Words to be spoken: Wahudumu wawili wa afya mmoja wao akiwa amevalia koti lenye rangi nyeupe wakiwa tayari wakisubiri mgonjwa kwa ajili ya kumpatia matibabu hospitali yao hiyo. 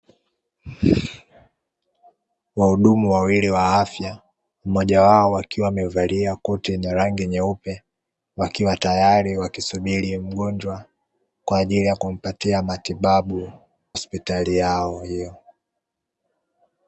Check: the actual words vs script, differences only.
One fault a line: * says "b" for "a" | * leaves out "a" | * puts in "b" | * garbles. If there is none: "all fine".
all fine